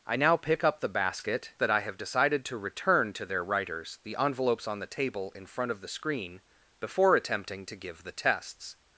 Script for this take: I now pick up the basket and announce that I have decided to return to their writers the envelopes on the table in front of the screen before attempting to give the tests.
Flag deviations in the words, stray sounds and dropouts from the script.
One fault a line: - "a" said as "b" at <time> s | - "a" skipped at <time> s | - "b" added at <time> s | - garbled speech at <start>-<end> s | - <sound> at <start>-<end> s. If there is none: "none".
- "and announce" skipped at 1.5 s